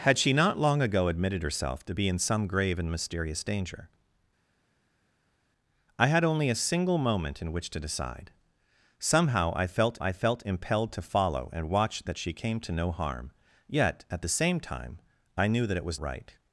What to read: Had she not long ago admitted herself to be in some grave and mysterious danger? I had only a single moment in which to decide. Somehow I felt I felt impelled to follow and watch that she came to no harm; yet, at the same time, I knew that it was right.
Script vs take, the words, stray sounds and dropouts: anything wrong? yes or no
no